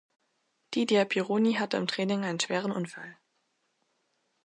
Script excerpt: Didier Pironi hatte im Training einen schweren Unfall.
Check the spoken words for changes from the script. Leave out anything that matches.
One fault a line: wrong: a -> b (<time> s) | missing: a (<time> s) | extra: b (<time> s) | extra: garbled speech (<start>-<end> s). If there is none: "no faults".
no faults